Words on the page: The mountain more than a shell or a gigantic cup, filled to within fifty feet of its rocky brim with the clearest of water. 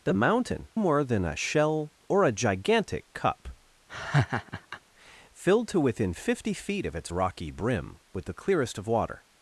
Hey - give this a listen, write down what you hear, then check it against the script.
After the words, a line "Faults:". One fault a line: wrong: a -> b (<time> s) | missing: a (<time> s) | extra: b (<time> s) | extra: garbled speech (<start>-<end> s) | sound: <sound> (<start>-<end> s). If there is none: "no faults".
The mountain more than a shell or a gigantic cup, filled to within fifty feet of its rocky brim with the clearest of water.
Faults:
sound: laugh (3.9-4.8 s)